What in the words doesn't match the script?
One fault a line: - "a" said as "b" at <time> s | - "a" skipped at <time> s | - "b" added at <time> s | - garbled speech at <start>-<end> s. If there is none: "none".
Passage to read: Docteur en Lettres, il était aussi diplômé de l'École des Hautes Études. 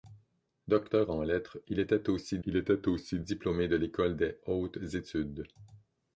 - "il était aussi" added at 2.4 s